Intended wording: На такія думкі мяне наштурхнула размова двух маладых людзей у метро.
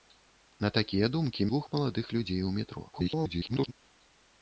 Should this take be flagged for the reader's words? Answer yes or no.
yes